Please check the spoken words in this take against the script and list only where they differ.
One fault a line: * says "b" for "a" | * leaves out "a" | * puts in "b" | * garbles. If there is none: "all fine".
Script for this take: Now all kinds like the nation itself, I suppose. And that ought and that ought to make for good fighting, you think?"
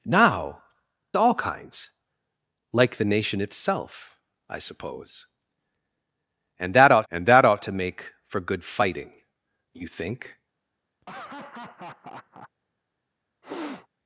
all fine